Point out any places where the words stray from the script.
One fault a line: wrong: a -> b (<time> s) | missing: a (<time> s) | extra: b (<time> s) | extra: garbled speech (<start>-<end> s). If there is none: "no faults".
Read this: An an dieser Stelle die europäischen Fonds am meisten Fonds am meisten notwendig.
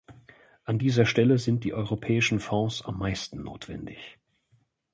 missing: an (0.8 s)
extra: sind (1.4 s)
missing: Fonds am meisten (3.4 s)